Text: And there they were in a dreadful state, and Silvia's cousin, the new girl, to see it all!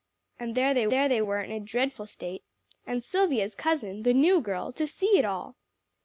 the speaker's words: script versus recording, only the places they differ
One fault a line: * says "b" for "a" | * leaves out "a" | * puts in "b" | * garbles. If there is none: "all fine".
* puts in "there they"